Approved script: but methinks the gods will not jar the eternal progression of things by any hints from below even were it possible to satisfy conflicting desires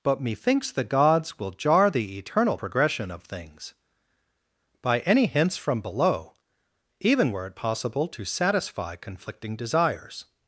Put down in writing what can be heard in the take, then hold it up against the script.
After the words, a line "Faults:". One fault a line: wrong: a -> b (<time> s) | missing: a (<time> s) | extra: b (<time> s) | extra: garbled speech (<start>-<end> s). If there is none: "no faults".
but methinks the gods will jar the eternal progression of things by any hints from below even were it possible to satisfy conflicting desires
Faults:
missing: not (1.5 s)